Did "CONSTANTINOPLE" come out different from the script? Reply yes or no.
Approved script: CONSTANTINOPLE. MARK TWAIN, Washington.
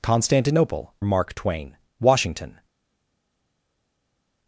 no